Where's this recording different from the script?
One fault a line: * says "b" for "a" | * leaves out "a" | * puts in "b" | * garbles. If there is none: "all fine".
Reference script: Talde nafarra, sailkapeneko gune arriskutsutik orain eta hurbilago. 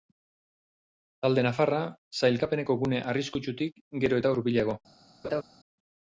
* says "gero" for "orain"